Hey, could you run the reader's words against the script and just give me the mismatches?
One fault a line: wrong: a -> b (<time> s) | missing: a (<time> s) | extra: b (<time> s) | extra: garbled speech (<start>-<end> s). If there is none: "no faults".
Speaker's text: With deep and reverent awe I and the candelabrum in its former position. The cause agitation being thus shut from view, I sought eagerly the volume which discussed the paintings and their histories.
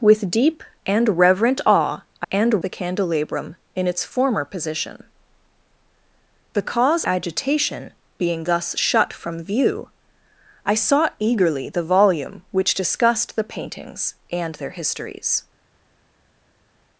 no faults